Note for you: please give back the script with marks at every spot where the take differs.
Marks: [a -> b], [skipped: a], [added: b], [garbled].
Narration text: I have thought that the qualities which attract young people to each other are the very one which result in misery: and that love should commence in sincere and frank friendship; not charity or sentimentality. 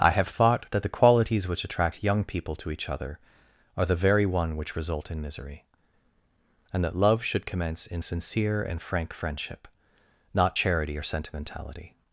I have thought that the qualities which attract young people to each other are the very one which result in misery: and that love should commence in sincere and frank friendship; not charity or sentimentality.